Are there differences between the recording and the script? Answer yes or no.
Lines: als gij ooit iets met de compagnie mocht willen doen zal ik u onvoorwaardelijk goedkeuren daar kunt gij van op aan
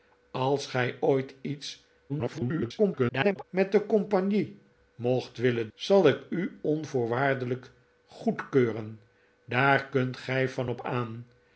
yes